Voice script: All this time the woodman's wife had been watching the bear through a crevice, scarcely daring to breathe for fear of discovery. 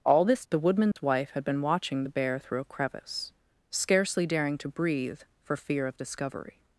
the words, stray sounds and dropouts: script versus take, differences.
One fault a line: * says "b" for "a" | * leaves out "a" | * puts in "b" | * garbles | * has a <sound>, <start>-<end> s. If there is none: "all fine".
* leaves out "time"
* has a dropout, 0.9-1.0 s